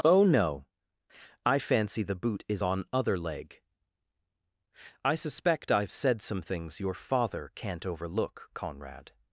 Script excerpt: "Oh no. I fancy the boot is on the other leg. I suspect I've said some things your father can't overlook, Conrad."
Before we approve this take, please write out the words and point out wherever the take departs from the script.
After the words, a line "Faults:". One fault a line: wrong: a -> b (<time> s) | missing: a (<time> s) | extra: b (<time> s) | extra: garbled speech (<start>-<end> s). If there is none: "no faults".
"Oh no. I fancy the boot is on other leg. I suspect I've said some things your father can't overlook, Conrad."
Faults:
missing: the (2.8 s)